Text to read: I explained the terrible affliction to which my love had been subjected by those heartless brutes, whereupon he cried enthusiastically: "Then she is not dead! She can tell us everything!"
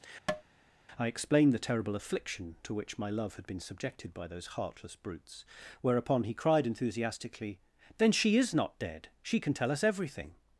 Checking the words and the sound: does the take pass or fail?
fail